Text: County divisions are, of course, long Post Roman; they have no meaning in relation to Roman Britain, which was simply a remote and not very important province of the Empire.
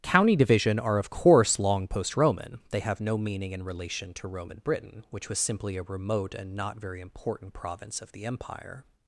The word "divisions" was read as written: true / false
false